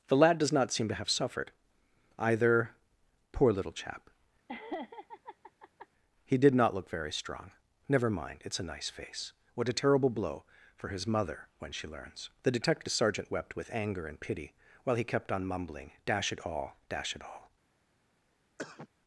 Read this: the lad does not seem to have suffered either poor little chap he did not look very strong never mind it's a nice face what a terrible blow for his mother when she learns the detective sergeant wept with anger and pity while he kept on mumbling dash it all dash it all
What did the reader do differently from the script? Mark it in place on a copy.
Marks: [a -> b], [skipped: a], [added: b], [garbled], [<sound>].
the lad does not seem to have suffered either poor little chap [laugh] he did not look very strong never mind it's a nice face what a terrible blow for his mother when she learns the detective sergeant wept with anger and pity while he kept on mumbling dash it all dash it all [cough]